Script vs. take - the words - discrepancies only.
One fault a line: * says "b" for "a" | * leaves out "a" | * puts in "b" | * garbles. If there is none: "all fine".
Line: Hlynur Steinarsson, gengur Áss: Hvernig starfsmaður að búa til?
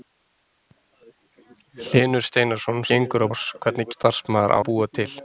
all fine